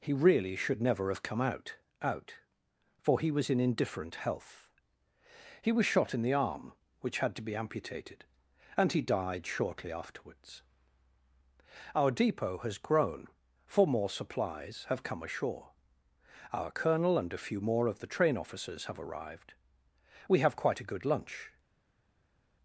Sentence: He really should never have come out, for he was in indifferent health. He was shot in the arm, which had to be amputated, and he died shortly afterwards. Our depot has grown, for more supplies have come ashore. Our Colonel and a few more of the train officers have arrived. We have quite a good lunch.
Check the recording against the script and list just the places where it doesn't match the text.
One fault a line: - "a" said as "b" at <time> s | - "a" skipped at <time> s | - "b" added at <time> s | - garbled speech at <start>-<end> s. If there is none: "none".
- "out" added at 2.0 s